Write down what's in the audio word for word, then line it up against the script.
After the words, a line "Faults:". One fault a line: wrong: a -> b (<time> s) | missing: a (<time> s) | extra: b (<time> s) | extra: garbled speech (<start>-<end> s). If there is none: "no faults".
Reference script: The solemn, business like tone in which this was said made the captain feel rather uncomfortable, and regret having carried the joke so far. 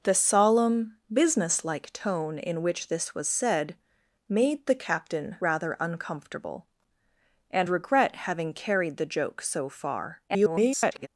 The solemn, business like tone in which this was said made the captain rather uncomfortable, and regret having carried the joke so far. [garbled]
Faults:
missing: feel (5.4 s)
extra: garbled speech (10.3-11.1 s)